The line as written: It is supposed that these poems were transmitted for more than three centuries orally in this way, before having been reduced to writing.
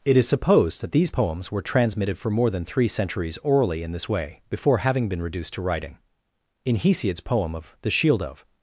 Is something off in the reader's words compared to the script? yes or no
yes